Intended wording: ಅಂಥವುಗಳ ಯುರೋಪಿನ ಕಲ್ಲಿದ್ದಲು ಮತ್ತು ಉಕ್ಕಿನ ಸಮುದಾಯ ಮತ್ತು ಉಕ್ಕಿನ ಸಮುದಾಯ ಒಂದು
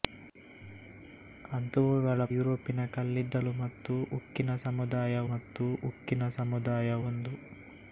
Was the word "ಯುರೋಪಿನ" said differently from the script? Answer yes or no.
no